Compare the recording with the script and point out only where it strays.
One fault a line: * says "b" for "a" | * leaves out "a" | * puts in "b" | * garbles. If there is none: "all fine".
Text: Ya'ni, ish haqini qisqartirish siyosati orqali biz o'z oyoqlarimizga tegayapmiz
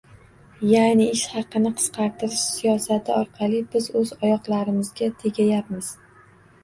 all fine